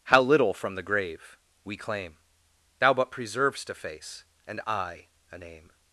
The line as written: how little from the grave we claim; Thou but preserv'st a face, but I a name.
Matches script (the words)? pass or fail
fail